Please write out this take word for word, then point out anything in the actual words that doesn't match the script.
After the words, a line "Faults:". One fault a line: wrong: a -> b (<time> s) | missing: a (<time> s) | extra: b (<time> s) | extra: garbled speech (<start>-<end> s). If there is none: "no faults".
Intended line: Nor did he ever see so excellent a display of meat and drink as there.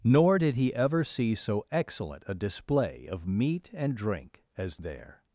Nor did he ever see so excellent a display of meat and drink as there.
Faults:
no faults